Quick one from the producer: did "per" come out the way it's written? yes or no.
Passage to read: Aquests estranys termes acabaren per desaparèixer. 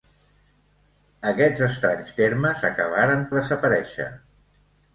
no